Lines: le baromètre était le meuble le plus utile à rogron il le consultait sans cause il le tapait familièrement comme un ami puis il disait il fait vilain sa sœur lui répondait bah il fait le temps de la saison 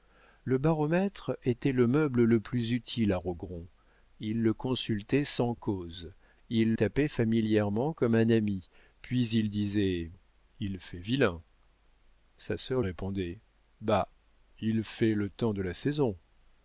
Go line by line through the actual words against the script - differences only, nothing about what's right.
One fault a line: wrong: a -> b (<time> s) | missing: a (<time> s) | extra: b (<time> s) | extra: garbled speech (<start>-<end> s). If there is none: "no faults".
missing: le (6.7 s)
missing: lui (12.8 s)